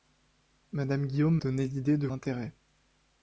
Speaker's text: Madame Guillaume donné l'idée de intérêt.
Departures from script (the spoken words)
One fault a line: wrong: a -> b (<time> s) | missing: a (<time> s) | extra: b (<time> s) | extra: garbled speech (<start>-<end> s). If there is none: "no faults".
no faults